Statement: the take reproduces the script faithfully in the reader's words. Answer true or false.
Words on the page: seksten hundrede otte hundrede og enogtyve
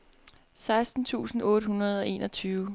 false